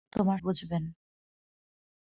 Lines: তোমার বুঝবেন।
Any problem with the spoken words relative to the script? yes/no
no